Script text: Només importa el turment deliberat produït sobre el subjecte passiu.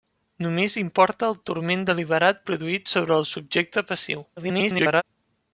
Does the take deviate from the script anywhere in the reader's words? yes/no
yes